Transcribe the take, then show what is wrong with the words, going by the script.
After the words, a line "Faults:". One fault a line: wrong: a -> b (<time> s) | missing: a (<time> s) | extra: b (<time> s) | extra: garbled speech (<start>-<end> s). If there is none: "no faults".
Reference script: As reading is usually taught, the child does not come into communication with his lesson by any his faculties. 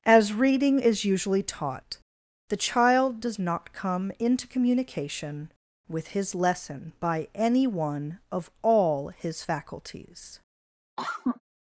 As reading is usually taught, the child does not come into communication with his lesson by any one of all his faculties.
Faults:
extra: one of all (7.7 s)